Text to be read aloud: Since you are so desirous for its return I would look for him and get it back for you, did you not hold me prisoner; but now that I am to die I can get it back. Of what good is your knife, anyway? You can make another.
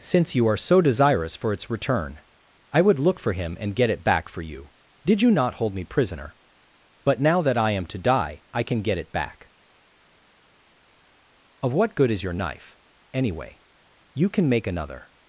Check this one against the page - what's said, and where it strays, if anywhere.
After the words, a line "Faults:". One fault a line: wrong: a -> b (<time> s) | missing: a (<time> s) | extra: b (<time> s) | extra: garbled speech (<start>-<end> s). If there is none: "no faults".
Since you are so desirous for its return I would look for him and get it back for you, did you not hold me prisoner; but now that I am to die I can get it back. Of what good is your knife, anyway? You can make another.
Faults:
no faults